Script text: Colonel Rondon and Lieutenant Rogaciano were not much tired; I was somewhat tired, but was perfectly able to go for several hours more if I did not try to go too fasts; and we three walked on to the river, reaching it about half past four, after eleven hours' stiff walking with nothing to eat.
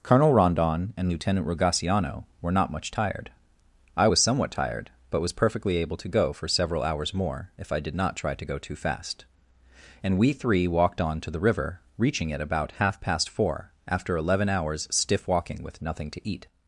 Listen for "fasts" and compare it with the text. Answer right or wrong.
wrong